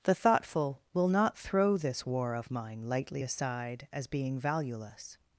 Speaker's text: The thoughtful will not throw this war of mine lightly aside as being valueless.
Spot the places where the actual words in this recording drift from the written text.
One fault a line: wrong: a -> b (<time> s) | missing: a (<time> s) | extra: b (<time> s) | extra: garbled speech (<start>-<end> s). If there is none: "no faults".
no faults